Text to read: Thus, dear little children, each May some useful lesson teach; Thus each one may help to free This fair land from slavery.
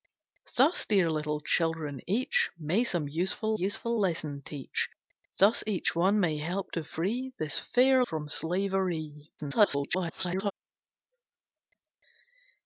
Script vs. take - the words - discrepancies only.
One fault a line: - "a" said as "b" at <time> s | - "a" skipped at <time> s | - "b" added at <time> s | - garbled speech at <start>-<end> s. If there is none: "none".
- "useful" added at 3.5 s
- "land" skipped at 8.1 s
- garbled speech at 9.4-10.5 s